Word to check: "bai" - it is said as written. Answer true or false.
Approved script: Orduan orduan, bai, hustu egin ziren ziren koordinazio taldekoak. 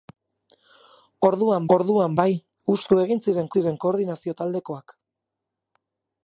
true